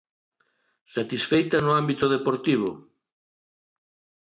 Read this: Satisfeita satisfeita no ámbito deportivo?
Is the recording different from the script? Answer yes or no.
yes